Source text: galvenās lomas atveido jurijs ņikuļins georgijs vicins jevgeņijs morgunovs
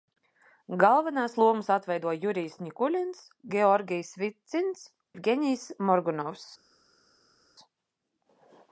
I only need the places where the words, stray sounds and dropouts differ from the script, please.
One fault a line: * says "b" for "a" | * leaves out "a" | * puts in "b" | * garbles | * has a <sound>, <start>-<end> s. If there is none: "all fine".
all fine